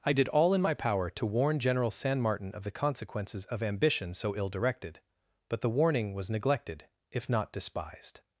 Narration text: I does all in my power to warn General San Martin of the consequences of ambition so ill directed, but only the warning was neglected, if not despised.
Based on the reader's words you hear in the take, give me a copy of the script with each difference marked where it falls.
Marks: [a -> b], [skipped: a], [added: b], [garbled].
I [does -> did] all in my power to warn General San Martin of the consequences of ambition so ill directed, but [skipped: only] the warning was neglected, if not despised.